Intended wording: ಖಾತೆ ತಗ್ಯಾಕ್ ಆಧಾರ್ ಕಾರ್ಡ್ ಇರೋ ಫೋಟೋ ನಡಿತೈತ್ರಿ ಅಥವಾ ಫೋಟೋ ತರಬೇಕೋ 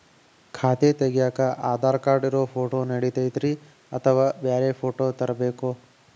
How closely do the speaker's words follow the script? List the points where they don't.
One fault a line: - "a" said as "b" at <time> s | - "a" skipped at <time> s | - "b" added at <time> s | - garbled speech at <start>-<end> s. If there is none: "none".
- "ಬ್ಯಾರೆ" added at 4.4 s